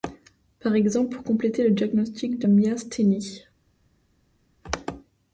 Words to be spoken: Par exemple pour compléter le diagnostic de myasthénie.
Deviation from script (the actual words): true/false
false